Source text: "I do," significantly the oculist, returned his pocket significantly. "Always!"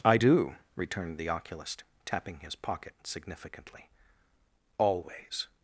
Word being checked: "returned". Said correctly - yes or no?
no